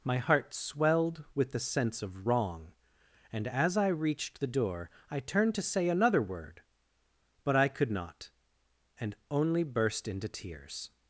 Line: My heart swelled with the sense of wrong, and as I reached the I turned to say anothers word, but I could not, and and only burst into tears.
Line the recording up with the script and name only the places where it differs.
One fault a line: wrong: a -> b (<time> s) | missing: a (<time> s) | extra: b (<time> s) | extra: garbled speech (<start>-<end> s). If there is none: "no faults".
extra: door (4.5 s)
wrong: anothers -> another (5.9 s)
missing: and (9.2 s)